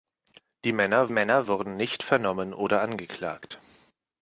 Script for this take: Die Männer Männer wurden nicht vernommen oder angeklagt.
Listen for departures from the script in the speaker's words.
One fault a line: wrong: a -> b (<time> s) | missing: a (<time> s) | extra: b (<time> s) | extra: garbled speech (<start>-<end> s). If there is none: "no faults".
no faults